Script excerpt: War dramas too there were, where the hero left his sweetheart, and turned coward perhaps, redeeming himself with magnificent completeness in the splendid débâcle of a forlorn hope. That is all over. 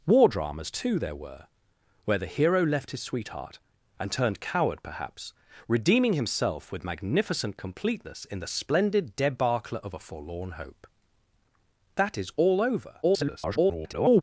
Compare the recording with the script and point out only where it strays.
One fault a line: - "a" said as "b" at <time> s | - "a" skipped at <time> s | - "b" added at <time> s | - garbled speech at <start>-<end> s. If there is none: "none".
- garbled speech at 13.0-14.2 s